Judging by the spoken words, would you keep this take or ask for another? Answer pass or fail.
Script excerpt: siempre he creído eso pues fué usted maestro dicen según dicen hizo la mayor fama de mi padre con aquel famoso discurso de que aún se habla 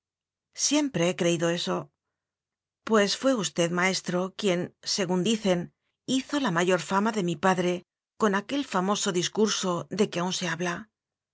fail